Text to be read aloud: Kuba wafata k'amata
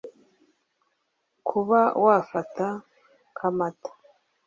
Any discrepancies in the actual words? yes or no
no